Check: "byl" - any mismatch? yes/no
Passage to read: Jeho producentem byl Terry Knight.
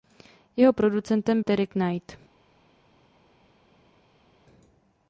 yes